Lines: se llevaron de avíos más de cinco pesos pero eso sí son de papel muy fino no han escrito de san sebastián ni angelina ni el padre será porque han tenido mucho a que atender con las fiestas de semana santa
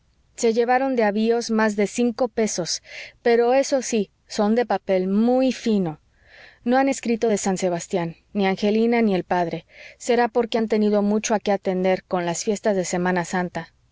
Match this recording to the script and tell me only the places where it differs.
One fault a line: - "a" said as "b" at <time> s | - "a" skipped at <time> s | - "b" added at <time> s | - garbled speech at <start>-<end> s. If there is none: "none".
none